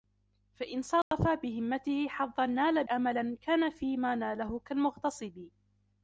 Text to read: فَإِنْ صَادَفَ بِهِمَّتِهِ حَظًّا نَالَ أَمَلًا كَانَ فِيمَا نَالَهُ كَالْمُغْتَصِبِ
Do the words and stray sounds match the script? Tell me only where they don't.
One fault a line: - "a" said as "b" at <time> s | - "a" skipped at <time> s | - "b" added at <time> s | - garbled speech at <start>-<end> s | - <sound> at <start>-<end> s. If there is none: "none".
- dropout at 1.0-1.1 s